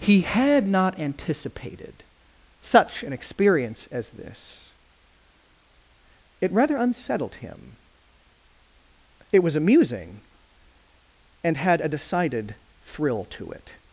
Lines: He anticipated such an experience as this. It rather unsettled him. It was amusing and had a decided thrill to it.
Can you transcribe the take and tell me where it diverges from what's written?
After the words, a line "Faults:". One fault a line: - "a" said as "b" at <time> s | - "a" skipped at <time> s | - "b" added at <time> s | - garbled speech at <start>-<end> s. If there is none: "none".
He had not anticipated such an experience as this. It rather unsettled him. It was amusing and had a decided thrill to it.
Faults:
- "had not" added at 0.2 s